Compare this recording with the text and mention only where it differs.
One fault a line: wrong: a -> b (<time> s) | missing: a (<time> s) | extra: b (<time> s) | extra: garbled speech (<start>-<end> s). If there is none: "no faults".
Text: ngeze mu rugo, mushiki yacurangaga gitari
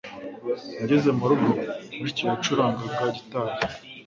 no faults